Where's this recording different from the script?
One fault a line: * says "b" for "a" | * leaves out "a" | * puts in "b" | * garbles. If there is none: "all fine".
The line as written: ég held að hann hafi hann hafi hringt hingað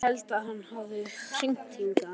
* leaves out "hann hafi"